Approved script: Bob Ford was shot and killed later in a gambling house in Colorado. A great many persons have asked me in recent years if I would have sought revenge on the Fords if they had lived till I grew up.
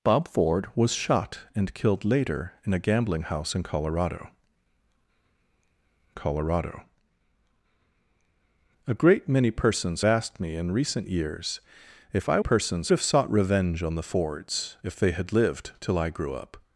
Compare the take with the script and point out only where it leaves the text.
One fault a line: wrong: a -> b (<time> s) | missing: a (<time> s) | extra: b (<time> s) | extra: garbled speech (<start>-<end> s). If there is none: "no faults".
extra: Colorado (6.1 s)
missing: have (10.0 s)
wrong: would -> persons (12.4 s)